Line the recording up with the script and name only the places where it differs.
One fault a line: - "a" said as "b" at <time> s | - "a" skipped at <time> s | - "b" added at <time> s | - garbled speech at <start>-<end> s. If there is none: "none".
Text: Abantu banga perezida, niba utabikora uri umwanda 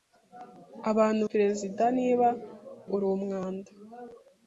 - "banga" skipped at 1.2 s
- "utabikora" skipped at 2.3 s